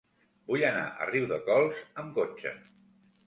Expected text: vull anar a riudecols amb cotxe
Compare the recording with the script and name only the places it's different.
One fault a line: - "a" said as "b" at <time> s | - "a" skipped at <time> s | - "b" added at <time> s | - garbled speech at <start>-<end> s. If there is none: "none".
none